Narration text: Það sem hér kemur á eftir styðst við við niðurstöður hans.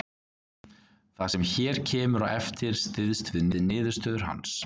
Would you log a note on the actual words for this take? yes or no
no